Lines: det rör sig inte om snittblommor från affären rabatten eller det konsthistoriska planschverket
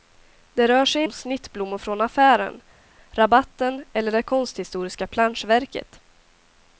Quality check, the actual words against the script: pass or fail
fail